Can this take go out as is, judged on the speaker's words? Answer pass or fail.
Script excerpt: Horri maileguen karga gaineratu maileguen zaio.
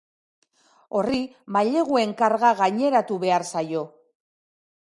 fail